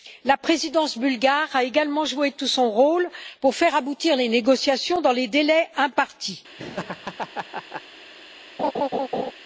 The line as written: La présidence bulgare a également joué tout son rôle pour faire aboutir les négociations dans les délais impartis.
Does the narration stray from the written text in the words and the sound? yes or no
yes